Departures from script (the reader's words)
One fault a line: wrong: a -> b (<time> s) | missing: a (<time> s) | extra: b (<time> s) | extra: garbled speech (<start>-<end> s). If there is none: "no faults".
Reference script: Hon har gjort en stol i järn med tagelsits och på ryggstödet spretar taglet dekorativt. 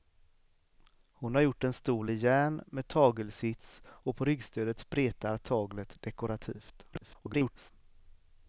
extra: garbled speech (6.9-7.7 s)